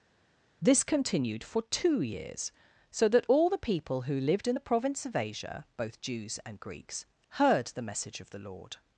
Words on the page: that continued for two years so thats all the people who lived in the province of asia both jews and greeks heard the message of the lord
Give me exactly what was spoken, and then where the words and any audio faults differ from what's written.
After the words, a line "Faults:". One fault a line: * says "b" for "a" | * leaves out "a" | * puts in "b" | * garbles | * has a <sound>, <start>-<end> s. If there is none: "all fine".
this continued for two years so that all the people who lived in the province of asia both jews and greeks heard the message of the lord
Faults:
* says "this" for "that"
* says "that" for "thats"